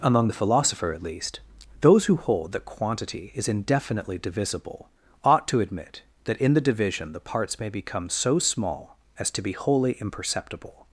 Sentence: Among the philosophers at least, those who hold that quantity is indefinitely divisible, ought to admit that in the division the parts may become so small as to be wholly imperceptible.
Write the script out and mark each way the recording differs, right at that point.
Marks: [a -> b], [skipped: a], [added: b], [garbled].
Among the [philosophers -> philosopher] at least, those who hold that quantity is indefinitely divisible, ought to admit that in the division the parts may become so small as to be wholly imperceptible.